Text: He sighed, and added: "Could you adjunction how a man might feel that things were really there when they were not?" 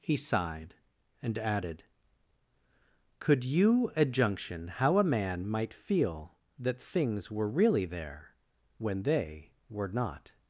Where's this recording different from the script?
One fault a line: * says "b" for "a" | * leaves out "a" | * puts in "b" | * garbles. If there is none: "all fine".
all fine